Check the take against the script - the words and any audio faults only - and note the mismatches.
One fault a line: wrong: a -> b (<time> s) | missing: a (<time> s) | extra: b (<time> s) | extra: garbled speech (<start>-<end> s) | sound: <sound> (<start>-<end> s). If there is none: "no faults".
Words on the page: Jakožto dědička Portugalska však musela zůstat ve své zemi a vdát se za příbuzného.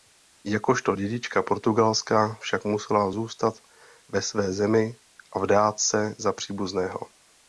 no faults